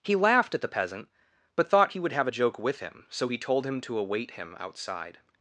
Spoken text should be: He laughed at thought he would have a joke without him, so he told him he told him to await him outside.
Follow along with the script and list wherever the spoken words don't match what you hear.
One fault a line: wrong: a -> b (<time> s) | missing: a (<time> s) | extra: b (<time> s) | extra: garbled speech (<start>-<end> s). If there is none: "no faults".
extra: the peasant but (0.6 s)
wrong: without -> with (2.6 s)
missing: he told him (3.8 s)